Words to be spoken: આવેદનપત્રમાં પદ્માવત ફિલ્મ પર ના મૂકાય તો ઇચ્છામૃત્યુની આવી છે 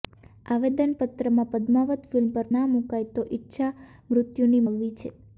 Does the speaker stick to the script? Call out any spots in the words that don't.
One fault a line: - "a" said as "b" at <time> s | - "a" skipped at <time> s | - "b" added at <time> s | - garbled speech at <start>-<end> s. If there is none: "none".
none